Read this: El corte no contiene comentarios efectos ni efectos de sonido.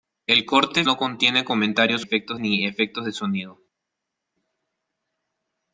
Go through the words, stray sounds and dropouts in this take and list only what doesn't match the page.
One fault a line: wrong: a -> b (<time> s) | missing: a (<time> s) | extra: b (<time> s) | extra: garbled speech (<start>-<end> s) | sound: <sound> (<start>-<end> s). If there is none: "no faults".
no faults